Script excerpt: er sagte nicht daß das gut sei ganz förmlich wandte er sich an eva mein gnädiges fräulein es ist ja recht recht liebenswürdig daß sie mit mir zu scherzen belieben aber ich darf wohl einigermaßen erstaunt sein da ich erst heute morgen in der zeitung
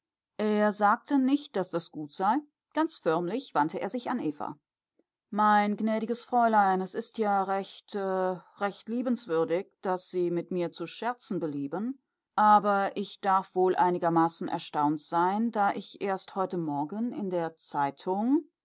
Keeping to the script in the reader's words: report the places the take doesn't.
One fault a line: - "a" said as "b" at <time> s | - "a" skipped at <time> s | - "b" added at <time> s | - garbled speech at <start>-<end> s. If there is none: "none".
none